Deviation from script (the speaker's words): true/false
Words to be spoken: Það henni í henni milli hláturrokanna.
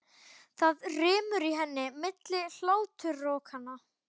true